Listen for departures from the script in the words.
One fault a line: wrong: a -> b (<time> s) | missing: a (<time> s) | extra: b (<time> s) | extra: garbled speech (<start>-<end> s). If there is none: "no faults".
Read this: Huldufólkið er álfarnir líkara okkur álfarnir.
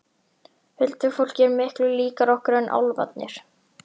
wrong: álfarnir -> miklu (1.6 s)
extra: en (2.6 s)